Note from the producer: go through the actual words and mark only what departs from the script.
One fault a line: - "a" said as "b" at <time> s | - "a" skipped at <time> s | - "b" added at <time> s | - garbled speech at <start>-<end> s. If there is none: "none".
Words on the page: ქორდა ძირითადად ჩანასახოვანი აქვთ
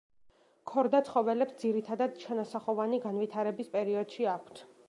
- "ცხოველებს" added at 1.1 s
- "განვითარების პერიოდში" added at 3.1 s